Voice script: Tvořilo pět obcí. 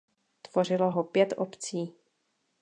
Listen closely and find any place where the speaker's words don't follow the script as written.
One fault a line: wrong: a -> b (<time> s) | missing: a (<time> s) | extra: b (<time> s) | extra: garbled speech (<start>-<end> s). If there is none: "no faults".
extra: ho (0.9 s)